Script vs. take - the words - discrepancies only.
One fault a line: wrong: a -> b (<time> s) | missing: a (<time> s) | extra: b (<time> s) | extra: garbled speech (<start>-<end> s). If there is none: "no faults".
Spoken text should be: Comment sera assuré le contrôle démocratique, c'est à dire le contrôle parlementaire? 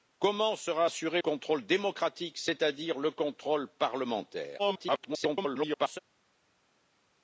missing: le (1.2 s)
extra: garbled speech (4.6-6.0 s)